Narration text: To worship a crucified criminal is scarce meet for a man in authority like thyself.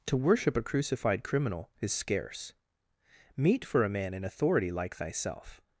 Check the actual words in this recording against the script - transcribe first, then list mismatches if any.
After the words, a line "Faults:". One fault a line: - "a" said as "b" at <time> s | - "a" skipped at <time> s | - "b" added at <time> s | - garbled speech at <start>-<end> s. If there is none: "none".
To worship a crucified criminal is scarce meet for a man in authority like thyself.
Faults:
none